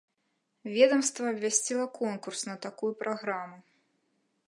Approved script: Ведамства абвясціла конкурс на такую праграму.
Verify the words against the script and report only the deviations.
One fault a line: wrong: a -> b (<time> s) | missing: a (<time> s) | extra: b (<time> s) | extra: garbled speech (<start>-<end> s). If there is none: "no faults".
no faults